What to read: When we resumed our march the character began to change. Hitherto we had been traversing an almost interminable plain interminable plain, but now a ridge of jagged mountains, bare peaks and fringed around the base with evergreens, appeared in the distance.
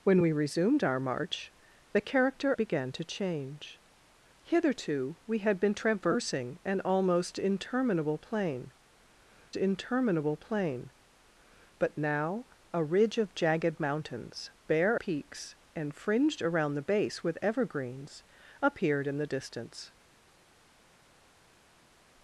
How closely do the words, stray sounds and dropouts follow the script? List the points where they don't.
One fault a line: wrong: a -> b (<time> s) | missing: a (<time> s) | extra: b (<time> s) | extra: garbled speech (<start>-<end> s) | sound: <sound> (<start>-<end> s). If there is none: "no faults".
no faults